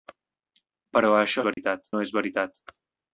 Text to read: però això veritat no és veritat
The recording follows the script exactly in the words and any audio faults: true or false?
false